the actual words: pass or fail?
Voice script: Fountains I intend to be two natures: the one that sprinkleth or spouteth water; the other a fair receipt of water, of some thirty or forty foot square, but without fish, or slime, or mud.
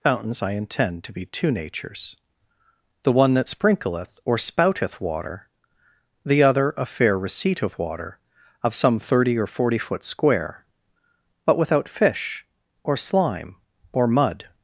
pass